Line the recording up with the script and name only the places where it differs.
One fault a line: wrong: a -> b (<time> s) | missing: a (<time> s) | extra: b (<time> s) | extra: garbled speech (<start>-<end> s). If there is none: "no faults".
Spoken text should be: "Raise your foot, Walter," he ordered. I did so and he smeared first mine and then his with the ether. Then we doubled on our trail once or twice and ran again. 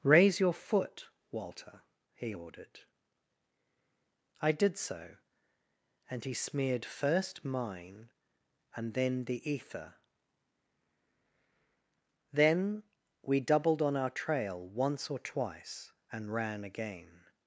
missing: his with (9.2 s)